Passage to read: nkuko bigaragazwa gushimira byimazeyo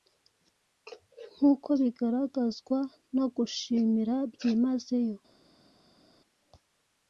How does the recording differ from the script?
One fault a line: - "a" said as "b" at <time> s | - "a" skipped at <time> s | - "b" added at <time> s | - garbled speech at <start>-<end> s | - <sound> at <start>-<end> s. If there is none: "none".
- "no" added at 3.2 s